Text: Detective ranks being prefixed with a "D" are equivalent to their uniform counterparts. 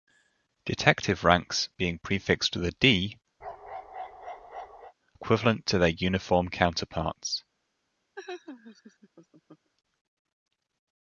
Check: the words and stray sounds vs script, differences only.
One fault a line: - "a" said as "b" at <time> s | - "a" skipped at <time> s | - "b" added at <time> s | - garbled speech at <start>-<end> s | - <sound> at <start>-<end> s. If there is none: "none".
- "are" skipped at 3.2 s
- bark at 3.4-4.9 s
- laugh at 8.2-9.7 s